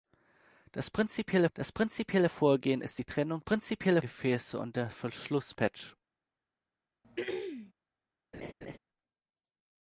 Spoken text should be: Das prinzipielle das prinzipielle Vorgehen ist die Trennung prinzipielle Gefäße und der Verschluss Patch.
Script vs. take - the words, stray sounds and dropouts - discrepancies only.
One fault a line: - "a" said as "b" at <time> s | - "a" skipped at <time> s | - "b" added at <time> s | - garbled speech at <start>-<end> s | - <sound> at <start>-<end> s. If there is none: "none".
- throat clearing at 7.0-7.7 s
- laugh at 8.3-8.8 s